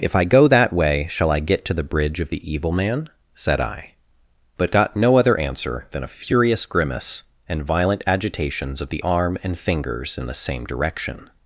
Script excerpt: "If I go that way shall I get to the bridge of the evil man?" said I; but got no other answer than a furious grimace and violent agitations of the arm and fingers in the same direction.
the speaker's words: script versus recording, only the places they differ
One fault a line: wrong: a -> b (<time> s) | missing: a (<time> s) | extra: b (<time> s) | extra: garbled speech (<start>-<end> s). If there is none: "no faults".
no faults